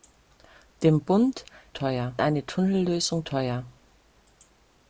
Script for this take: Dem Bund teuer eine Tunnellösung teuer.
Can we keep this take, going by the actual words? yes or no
yes